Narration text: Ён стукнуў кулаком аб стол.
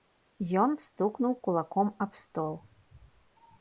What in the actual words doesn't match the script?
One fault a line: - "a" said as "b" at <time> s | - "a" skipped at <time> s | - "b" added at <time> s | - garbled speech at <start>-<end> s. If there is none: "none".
none